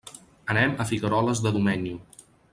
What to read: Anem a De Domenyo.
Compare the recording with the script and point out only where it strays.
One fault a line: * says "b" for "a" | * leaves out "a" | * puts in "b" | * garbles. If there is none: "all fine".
* puts in "Figueroles"